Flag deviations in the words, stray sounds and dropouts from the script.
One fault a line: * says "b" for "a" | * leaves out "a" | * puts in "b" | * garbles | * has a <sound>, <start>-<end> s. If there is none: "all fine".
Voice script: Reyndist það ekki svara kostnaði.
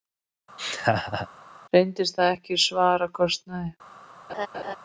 * has a laugh, 0.6-1.3 s
* has a laugh, 4.3-4.8 s